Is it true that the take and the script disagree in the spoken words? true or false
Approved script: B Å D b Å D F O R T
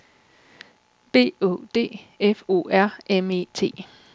true